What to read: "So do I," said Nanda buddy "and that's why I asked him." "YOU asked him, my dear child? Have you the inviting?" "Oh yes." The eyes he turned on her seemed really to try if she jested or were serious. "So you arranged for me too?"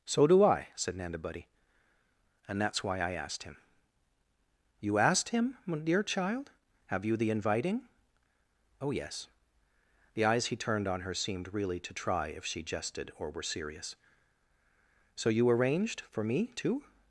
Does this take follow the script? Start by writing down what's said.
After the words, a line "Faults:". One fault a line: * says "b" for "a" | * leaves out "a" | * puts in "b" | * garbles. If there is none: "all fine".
"So do I," said Nanda buddy "and that's why I asked him." "YOU asked him, my dear child? Have you the inviting?" "Oh yes." The eyes he turned on her seemed really to try if she jested or were serious. "So you arranged for me too?"
Faults:
all fine